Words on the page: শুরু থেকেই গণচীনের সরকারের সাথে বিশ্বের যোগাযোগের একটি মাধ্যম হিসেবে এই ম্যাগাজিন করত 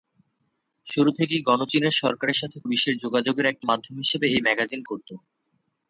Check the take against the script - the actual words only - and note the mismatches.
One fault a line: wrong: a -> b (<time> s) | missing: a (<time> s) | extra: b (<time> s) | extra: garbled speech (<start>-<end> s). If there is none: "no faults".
no faults